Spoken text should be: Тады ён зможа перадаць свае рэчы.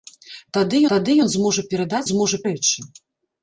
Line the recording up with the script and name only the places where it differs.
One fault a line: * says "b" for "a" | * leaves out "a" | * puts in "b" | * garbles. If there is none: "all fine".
* puts in "тады"
* says "зможа" for "свае"